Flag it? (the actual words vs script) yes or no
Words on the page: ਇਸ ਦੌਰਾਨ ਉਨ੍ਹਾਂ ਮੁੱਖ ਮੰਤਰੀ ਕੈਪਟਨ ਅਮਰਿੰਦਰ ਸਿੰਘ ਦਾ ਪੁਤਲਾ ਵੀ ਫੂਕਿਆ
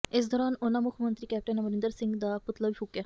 no